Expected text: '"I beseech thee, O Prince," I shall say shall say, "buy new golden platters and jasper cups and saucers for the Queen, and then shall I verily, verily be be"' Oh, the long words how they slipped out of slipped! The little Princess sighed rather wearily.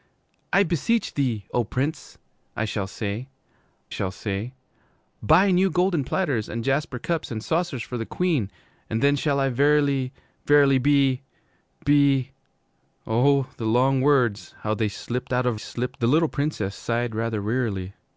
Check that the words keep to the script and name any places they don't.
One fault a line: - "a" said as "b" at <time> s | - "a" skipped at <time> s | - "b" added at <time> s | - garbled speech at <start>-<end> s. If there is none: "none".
none